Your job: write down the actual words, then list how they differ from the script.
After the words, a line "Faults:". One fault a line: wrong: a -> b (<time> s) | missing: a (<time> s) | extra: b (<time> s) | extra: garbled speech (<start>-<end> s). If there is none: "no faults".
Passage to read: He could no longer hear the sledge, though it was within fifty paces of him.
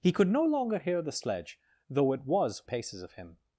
He could no longer hear the sledge, though it was paces of him.
Faults:
missing: within fifty (2.7 s)